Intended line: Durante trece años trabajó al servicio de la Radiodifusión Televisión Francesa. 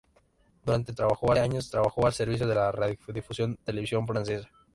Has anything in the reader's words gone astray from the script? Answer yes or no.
yes